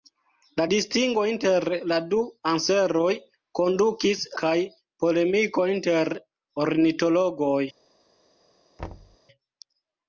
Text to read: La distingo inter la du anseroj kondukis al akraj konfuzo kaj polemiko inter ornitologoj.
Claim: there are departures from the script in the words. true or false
true